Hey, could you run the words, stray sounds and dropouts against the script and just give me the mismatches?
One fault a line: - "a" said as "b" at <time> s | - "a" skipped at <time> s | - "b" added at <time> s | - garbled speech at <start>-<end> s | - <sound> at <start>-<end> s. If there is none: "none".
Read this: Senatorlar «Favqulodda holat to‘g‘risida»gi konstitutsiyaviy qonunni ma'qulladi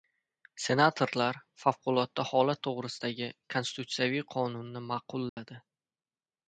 - dropout at 5.3-5.4 s